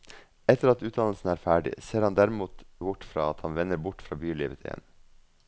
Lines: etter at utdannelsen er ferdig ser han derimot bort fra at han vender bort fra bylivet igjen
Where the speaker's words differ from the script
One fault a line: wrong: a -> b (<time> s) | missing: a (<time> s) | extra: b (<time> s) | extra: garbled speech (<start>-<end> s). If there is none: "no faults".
no faults